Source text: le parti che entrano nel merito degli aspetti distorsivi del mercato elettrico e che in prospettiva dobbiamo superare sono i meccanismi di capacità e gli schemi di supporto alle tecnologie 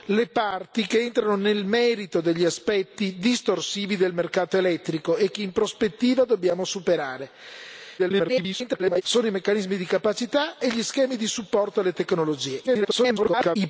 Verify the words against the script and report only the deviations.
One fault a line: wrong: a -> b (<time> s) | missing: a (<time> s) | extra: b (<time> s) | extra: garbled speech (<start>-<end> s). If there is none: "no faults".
extra: garbled speech (8.0-9.0 s)
extra: garbled speech (12.7-13.6 s)